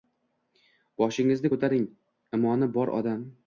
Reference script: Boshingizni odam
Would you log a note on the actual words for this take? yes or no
yes